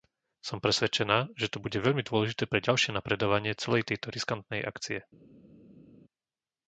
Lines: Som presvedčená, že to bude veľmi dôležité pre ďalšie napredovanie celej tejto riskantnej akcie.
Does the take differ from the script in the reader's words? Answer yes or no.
no